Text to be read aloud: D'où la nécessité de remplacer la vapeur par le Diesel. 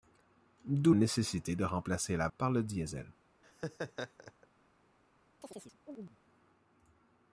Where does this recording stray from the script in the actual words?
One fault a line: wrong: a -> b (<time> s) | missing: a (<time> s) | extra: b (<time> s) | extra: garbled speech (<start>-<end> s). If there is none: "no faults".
missing: la (0.9 s)
missing: vapeur (2.3 s)